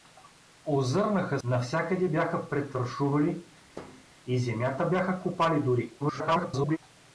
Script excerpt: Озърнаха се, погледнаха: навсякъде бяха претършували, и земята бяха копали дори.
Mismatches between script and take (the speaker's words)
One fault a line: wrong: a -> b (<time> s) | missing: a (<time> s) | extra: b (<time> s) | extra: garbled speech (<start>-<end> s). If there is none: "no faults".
missing: се погледнаха (1.4 s)
extra: garbled speech (6.0-6.8 s)